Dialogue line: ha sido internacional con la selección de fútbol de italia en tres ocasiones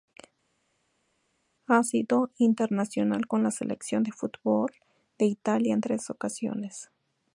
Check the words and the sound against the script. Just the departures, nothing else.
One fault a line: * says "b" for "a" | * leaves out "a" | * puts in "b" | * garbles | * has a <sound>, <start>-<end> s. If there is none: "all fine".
all fine